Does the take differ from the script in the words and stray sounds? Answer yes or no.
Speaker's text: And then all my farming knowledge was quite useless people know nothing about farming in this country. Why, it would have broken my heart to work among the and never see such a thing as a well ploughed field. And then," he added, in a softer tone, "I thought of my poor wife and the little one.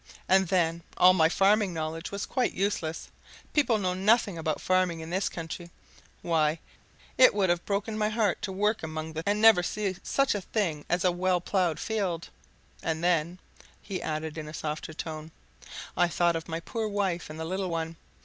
no